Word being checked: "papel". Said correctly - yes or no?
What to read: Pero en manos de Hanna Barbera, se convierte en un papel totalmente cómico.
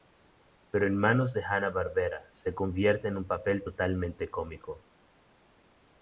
yes